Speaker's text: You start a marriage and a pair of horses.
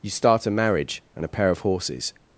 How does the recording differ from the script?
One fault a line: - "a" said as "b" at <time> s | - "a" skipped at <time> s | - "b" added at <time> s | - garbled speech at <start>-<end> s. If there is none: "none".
none